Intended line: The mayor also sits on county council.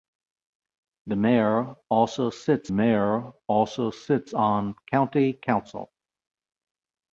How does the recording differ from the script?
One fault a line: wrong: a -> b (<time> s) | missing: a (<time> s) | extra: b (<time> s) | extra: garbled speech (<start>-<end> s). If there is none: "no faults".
extra: mayor also sits (2.7 s)